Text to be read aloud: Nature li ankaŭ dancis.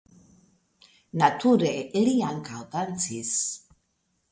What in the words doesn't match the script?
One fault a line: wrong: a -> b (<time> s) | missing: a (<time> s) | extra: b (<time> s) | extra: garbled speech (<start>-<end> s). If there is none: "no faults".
no faults